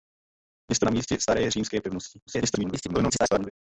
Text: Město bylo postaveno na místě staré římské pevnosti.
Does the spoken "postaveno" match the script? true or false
false